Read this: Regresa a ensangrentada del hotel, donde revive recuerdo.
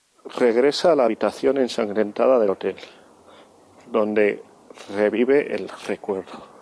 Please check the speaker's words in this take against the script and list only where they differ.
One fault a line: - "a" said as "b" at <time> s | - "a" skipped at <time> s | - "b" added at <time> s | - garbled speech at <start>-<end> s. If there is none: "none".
- "la habitación" added at 0.9 s
- "el" added at 5.5 s